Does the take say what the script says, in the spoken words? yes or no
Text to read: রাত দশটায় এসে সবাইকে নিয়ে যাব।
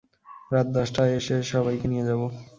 yes